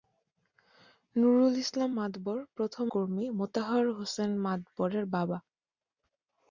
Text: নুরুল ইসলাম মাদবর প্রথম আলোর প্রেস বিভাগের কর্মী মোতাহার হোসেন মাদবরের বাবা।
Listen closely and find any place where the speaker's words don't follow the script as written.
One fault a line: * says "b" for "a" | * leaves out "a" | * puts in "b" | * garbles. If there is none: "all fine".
* leaves out "আলোর প্রেস বিভাগের"